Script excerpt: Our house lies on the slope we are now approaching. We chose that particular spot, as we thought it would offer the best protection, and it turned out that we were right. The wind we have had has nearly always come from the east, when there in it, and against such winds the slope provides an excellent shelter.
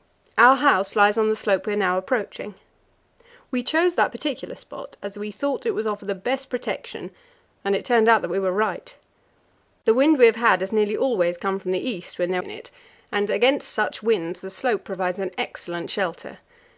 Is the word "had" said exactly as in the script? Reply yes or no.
yes